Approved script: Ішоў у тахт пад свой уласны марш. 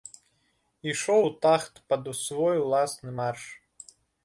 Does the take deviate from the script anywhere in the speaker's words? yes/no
no